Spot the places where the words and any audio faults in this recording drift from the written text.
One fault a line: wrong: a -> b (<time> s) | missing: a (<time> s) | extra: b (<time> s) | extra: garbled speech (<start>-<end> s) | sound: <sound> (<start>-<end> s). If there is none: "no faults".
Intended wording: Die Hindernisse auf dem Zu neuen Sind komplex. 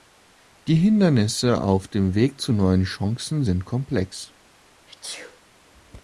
extra: Weg (2.1 s)
extra: Chancen (2.8 s)
sound: sneeze (4.9-5.4 s)